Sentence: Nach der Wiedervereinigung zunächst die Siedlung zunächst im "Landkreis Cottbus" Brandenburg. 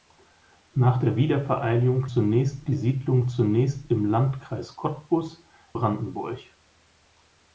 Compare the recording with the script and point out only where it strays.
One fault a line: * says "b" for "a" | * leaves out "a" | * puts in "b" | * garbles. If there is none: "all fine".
all fine